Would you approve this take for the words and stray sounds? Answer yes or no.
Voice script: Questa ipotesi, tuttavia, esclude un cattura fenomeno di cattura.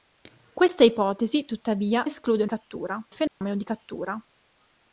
no